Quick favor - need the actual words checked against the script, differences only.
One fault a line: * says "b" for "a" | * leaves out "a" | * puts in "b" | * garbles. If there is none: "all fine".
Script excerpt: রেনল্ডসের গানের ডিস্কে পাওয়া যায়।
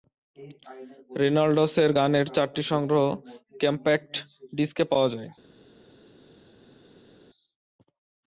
* puts in "চারটি সংগ্রহ কম্প্যাক্ট"